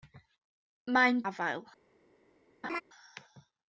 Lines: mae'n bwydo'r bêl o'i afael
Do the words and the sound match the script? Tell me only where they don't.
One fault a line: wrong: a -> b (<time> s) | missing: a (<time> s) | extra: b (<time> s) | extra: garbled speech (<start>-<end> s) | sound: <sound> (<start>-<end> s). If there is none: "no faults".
missing: bwydo'r bêl o'i (1.2 s)
sound: laugh (2.6-2.8 s)